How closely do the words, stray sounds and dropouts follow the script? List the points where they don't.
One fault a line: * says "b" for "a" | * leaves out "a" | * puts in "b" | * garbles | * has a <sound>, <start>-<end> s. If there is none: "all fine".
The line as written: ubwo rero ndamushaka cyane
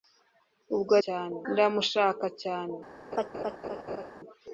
* says "cyane" for "rero"
* has a laugh, 3.1-4.1 s